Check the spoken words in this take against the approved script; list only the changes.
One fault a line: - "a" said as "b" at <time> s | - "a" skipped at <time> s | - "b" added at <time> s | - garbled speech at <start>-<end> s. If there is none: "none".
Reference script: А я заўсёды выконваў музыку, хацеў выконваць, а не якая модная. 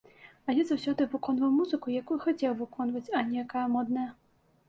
- "якую" added at 2.0 s